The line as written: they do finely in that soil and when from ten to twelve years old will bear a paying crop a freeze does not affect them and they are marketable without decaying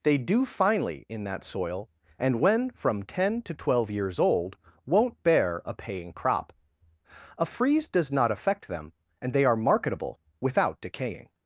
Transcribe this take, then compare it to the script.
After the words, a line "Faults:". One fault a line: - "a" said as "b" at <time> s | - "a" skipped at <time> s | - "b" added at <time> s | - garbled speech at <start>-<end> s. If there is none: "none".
they do finely in that soil and when from ten to twelve years old won't bear a paying crop a freeze does not affect them and they are marketable without decaying
Faults:
- "will" said as "won't" at 4.9 s